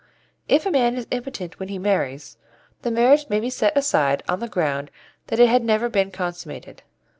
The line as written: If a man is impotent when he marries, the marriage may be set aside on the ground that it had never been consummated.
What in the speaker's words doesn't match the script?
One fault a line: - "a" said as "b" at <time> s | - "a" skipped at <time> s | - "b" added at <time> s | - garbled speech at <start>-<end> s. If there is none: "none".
none